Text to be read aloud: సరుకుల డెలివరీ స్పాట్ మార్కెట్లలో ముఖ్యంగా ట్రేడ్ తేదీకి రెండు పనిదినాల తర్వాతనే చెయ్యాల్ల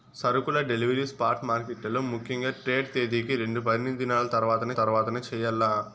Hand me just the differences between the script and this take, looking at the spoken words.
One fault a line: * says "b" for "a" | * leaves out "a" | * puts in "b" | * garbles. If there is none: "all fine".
* puts in "తర్వాతనే"